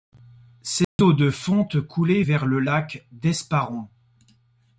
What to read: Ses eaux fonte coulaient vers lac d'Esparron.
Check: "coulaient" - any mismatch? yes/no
no